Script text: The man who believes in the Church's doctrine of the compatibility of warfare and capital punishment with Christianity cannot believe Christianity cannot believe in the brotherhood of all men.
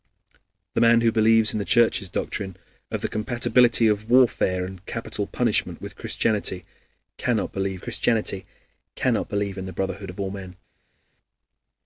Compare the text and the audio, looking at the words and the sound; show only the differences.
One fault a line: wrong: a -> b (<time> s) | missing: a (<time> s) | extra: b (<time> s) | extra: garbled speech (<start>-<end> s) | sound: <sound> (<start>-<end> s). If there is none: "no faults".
no faults